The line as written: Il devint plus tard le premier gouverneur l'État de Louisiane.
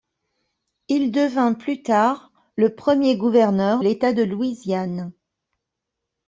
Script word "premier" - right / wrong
right